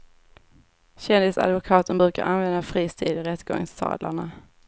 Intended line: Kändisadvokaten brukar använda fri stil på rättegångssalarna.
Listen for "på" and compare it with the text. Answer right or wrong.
wrong